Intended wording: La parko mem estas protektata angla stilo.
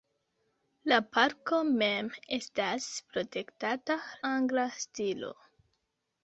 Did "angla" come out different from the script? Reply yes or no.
no